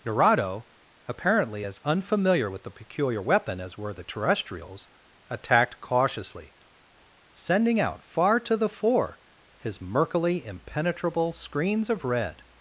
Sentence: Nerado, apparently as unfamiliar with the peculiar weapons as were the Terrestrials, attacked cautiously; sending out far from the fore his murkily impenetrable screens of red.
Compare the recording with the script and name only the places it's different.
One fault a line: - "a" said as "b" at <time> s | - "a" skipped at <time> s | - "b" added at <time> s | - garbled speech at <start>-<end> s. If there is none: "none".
- "weapons" said as "weapon" at 3.2 s
- "from" said as "to" at 8.4 s